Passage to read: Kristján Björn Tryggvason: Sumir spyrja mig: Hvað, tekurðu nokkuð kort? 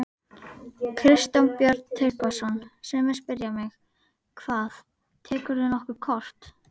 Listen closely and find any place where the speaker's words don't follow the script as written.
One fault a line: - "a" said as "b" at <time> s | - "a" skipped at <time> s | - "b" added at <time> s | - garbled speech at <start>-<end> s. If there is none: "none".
none